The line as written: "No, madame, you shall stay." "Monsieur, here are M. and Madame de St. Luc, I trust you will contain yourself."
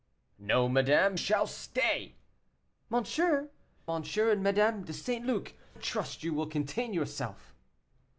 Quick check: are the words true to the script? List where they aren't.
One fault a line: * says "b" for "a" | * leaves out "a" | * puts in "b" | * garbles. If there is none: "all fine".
* leaves out "you"
* leaves out "here are M"
* leaves out "I"